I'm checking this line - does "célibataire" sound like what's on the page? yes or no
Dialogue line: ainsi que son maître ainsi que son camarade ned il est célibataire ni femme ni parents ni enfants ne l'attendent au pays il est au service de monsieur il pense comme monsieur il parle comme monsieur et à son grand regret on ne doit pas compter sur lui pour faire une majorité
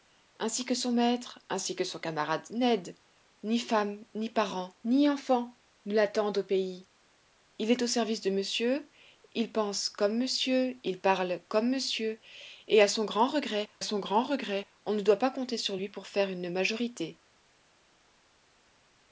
no